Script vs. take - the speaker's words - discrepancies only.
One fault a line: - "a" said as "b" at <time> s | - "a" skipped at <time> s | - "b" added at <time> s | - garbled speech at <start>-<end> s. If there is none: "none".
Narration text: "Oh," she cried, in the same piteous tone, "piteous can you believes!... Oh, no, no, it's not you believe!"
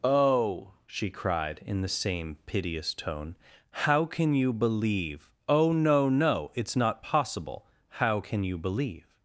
- "piteous" said as "how" at 3.7 s
- "believes" said as "believe" at 4.5 s
- "possible How can" added at 7.0 s